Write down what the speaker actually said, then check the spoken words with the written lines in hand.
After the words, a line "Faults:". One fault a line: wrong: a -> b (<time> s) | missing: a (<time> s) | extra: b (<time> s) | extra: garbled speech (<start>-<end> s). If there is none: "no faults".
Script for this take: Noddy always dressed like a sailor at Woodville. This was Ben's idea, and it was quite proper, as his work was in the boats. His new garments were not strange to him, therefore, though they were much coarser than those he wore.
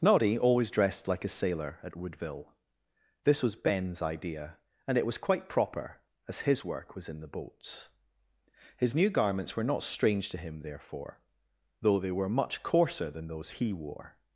Noddy always dressed like a sailor at Woodville. This was Ben's idea, and it was quite proper, as his work was in the boats. His new garments were not strange to him, therefore, though they were much coarser than those he wore.
Faults:
no faults